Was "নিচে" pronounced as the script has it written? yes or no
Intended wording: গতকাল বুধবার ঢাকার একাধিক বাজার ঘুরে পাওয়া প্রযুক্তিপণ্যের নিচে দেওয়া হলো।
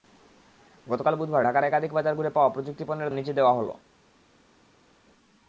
yes